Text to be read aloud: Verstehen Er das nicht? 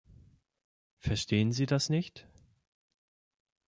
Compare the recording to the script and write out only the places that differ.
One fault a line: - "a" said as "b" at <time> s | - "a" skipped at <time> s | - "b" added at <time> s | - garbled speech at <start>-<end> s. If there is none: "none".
- "Er" said as "Sie" at 1.5 s